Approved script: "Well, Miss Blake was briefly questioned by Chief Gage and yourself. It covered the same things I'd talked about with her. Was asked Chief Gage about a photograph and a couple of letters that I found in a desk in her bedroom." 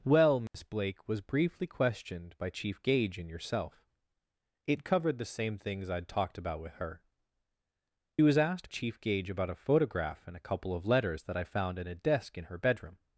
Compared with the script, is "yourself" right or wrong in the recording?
right